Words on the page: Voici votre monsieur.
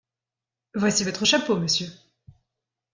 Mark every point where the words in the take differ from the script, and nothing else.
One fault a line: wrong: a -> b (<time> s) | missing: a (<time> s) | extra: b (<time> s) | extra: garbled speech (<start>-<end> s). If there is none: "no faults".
extra: chapeau (1.2 s)